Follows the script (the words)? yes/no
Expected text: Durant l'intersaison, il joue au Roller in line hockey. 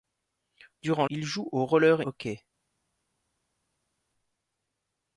no